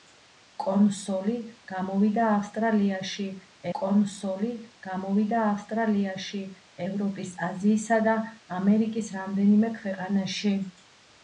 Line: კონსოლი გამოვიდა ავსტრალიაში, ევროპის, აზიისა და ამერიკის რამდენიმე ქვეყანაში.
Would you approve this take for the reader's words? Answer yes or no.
no